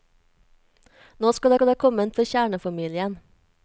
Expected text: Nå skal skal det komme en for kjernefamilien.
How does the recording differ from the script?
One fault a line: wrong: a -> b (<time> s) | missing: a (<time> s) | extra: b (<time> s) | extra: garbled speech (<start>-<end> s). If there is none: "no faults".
no faults